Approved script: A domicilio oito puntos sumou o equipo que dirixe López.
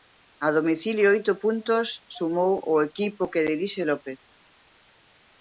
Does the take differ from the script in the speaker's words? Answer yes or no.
no